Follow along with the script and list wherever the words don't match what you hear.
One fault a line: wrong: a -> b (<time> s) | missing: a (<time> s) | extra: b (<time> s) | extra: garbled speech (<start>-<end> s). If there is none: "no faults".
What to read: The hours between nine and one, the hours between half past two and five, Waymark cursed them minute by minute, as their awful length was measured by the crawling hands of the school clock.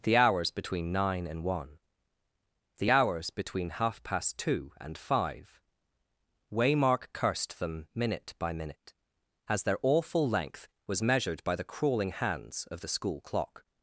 no faults